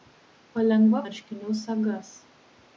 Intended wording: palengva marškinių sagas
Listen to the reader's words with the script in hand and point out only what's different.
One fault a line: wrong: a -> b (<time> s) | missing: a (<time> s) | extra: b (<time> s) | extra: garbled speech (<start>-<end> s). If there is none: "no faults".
no faults